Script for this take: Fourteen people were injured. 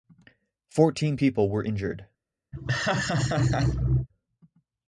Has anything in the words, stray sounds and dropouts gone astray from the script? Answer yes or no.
yes